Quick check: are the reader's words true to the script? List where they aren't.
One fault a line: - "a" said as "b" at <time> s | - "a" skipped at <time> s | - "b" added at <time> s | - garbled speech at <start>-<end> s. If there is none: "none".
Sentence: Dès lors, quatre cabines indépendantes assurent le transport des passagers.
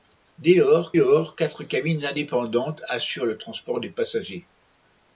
- "lors" added at 0.9 s